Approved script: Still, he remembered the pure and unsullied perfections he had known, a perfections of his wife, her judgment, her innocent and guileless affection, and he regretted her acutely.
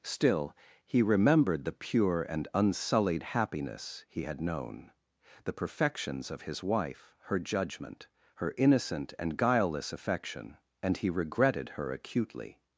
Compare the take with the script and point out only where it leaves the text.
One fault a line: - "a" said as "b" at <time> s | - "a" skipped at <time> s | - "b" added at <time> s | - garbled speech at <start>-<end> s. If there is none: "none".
- "perfections" said as "happiness" at 3.2 s
- "a" said as "the" at 5.4 s